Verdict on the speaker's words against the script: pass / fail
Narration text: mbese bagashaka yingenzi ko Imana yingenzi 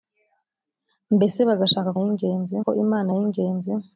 pass